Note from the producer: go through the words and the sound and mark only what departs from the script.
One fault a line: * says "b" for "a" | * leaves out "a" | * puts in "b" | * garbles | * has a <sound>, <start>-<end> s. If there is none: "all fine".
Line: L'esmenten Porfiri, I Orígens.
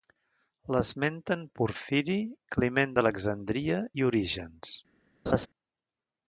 * puts in "Climent d'Alexandria"
* has a laugh, 5.3-5.5 s